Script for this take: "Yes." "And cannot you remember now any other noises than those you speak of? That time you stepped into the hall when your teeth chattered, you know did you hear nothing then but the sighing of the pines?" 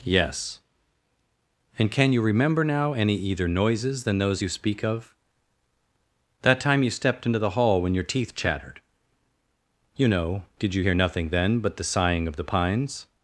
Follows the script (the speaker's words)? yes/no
no